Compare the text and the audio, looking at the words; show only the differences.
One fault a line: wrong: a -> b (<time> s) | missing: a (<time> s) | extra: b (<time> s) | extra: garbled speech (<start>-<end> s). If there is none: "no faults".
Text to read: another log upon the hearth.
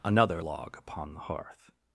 no faults